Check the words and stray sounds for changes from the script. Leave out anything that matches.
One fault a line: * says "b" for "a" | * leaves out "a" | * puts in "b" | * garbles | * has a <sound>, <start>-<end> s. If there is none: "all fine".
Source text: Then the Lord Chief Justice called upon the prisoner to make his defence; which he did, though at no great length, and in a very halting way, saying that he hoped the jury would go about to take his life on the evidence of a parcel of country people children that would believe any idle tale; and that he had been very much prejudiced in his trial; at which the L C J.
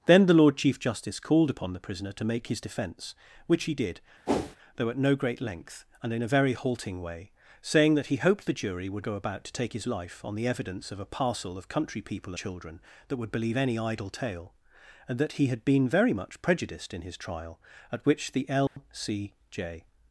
* has a whoosh, 4.3-4.6 s
* has a dropout, 18.7-18.8 s